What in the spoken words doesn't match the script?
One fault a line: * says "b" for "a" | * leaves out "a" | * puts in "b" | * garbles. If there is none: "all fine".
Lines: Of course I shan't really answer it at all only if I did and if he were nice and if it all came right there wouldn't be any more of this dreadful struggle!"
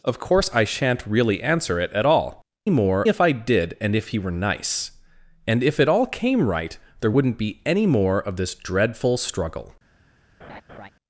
* says "more" for "only"